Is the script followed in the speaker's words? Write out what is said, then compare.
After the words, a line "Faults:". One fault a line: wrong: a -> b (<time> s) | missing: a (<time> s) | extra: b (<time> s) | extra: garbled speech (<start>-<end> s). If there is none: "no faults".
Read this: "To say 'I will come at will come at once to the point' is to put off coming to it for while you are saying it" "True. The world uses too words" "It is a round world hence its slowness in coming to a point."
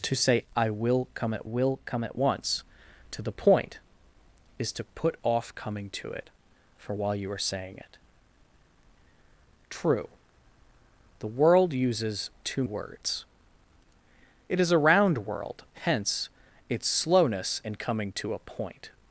"To say 'I will come at will come at once to the point' is to put off coming to it for while you are saying it" "True. The world uses too words" "It is a round world hence its slowness in coming to a point."
Faults:
no faults